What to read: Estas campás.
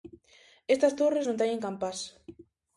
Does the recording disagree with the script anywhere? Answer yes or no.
yes